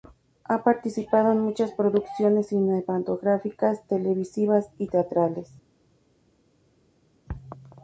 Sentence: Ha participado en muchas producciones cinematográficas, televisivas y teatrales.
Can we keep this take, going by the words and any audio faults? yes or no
yes